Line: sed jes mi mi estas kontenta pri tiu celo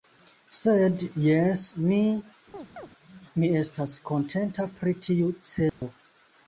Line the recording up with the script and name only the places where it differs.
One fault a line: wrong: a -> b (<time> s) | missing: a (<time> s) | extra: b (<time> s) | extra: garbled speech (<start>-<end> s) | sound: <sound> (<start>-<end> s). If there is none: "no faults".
sound: chirp (2.5-2.9 s)
sound: dropout (5.7-5.8 s)